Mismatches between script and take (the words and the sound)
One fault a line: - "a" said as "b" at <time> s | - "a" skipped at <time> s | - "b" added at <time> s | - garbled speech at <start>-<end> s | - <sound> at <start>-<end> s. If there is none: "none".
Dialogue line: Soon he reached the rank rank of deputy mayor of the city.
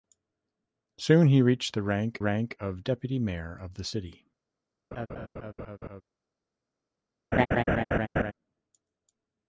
- laugh at 4.9-6.0 s
- laugh at 7.3-8.3 s